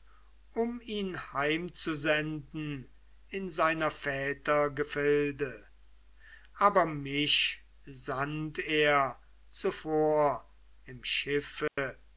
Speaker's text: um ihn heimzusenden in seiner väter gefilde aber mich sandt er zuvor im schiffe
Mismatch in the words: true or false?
false